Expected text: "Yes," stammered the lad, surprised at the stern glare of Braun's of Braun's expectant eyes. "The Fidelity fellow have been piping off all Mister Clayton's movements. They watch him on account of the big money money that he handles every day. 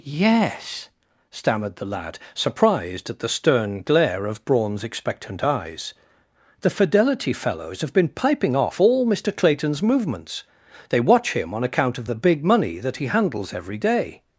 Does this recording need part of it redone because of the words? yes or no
yes